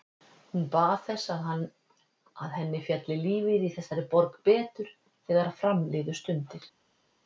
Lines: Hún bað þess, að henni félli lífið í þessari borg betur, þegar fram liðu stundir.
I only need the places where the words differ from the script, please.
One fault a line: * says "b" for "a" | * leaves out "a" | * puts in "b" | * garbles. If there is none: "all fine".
all fine